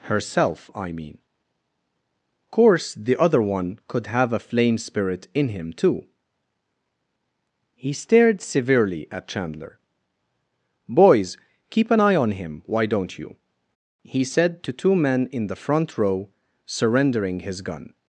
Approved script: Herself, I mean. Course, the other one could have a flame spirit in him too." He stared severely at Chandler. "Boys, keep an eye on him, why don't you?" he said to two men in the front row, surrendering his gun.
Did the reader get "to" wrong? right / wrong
right